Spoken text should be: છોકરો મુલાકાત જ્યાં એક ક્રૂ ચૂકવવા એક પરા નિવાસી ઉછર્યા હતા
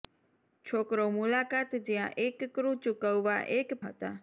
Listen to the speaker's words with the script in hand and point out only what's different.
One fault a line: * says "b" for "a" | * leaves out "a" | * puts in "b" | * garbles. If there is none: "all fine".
* leaves out "પરા નિવાસી ઉછર્યા"